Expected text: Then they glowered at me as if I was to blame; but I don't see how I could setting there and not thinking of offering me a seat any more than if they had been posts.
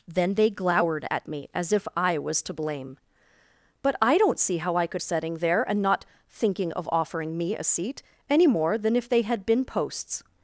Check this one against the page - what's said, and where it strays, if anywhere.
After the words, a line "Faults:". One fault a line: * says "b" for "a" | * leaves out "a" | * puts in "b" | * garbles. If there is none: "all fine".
Then they glowered at me as if I was to blame; but I don't see how I could setting there and not thinking of offering me a seat any more than if they had been posts.
Faults:
all fine